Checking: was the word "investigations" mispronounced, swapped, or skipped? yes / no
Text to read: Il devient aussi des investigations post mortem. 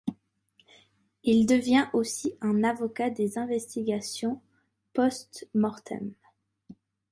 no